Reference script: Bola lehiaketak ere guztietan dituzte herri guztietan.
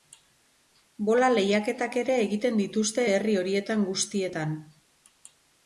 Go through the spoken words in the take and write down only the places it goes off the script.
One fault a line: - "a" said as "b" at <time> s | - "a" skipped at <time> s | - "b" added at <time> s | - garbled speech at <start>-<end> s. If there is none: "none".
- "guztietan" said as "egiten" at 2.2 s
- "horietan" added at 3.4 s